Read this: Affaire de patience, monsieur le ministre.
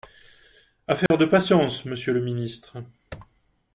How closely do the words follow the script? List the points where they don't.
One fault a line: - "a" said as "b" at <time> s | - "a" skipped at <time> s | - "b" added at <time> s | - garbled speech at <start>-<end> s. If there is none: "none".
none